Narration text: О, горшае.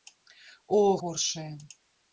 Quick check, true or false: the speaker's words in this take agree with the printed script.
true